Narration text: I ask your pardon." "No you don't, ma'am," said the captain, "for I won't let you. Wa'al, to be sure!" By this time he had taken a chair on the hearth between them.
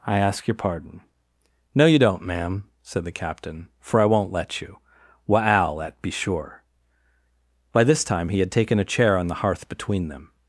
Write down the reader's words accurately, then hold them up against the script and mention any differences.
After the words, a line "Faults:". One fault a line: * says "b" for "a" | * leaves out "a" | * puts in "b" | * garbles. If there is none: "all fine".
I ask your pardon." "No you don't, ma'am," said the captain, "for I won't let you. Wa'al, at be sure!" By this time he had taken a chair on the hearth between them.
Faults:
* says "at" for "to"